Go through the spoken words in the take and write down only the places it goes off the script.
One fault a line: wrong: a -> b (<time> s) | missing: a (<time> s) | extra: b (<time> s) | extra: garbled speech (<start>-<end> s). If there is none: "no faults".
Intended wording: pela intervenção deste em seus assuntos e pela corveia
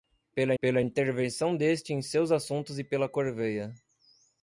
extra: pela (0.6 s)